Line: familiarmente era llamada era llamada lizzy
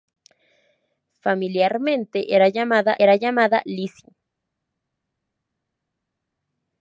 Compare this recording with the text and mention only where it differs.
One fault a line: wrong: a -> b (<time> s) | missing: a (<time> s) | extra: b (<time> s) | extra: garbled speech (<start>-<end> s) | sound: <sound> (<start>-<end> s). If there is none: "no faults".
no faults